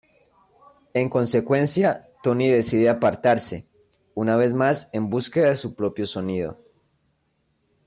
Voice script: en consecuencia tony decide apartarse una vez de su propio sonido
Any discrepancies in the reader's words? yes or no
yes